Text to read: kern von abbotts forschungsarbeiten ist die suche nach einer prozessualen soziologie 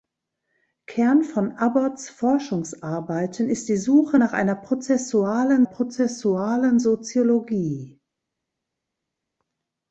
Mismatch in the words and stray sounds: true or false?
true